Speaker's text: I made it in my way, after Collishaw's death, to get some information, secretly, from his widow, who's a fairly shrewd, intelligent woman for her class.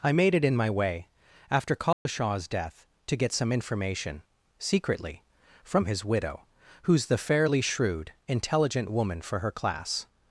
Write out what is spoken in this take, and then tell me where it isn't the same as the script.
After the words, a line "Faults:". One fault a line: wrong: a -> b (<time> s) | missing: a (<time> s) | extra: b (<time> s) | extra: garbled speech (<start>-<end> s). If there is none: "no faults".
I made it in my way, after Collishaw's death, to get some information, secretly, from his widow, who's the fairly shrewd, intelligent woman for her class.
Faults:
wrong: a -> the (7.0 s)